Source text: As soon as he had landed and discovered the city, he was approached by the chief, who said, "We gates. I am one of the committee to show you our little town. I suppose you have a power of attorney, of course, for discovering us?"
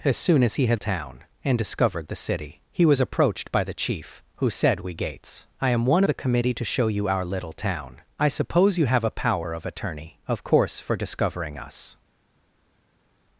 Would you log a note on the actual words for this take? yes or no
yes